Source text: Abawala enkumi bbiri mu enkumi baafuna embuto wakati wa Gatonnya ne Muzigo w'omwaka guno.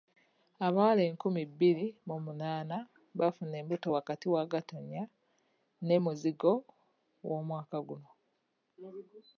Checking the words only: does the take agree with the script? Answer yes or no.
no